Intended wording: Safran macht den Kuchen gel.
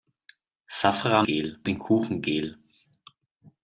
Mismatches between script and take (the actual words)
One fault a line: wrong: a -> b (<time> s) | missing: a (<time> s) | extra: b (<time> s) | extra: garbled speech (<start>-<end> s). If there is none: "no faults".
wrong: macht -> gel (1.2 s)